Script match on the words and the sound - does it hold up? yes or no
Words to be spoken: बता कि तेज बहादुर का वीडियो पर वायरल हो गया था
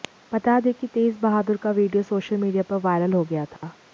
no